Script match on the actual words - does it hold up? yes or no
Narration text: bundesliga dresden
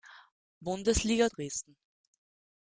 yes